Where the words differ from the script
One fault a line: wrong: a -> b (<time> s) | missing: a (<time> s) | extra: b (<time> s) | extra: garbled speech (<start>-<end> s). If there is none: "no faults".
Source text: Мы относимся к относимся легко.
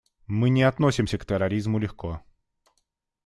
extra: не (0.5 s)
wrong: относимся -> терроризму (1.2 s)